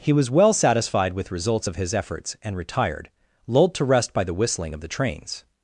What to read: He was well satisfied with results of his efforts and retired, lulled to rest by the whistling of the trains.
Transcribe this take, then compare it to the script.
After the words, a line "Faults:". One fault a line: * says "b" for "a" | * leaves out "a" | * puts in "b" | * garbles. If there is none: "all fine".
He was well satisfied with results of his efforts and retired, lulled to rest by the whistling of the trains.
Faults:
all fine